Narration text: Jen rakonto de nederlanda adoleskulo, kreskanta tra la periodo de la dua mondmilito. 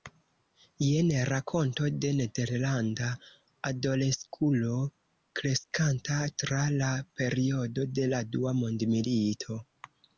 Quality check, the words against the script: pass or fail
pass